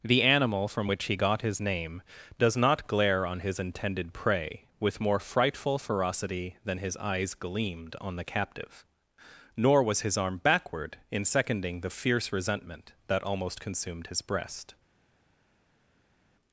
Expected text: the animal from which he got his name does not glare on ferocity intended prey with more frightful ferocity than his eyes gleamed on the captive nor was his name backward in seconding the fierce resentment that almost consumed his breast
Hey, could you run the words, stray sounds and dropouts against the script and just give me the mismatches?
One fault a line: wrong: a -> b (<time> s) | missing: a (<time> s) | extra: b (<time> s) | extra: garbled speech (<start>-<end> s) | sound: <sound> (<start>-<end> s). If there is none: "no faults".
wrong: ferocity -> his (3.4 s)
wrong: name -> arm (10.2 s)